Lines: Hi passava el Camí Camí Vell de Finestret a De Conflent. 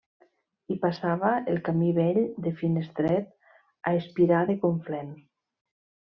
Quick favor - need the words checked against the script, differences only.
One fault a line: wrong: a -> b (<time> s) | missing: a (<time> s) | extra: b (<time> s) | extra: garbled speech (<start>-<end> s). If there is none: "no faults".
missing: Camí (1.9 s)
extra: Espirà (4.0 s)